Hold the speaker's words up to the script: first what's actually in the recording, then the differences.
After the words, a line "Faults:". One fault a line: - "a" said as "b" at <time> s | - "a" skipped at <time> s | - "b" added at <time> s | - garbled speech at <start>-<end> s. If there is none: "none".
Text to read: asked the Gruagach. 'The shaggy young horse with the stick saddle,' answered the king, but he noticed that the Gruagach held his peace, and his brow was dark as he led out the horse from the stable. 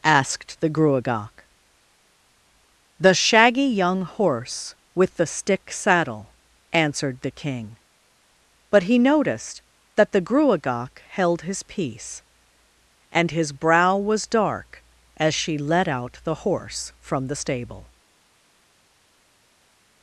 asked the Gruagach. 'The shaggy young horse with the stick saddle,' answered the king, but he noticed that the Gruagach held his peace, and his brow was dark as she led out the horse from the stable.
Faults:
- "he" said as "she" at 15.3 s